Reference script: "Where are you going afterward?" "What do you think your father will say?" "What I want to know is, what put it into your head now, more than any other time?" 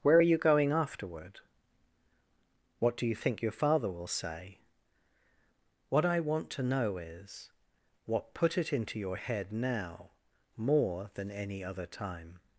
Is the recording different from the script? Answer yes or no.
no